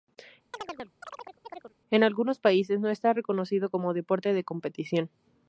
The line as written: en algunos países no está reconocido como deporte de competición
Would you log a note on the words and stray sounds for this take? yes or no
yes